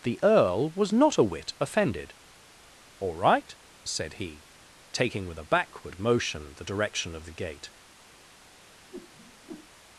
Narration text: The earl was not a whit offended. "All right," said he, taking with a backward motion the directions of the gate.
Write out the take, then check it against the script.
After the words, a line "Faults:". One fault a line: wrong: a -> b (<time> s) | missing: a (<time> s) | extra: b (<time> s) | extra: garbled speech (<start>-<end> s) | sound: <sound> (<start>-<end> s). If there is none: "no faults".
The earl was not a whit offended. "All right," said he, taking with a backward motion the direction of the gate.
Faults:
wrong: directions -> direction (6.6 s)
sound: whoosh (8.9-9.7 s)